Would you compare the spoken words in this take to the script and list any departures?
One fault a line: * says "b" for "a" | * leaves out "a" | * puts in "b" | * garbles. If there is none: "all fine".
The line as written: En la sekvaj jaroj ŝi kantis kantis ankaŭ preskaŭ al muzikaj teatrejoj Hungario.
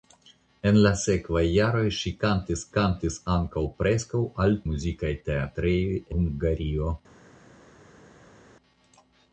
all fine